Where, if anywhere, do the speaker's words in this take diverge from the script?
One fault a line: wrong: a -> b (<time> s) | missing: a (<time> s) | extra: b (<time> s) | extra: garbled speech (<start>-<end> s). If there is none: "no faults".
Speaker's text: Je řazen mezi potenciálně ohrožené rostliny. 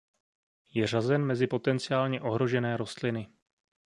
no faults